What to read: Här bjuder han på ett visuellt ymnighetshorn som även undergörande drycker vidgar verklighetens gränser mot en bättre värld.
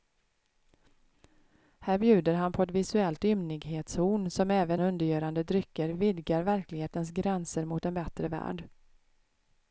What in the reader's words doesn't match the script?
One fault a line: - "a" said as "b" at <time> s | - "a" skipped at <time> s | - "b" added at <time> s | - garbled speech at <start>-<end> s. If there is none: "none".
none